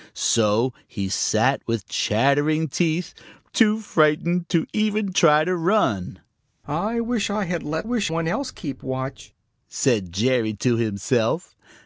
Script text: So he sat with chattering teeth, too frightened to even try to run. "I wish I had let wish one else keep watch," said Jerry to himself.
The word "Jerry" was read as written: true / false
true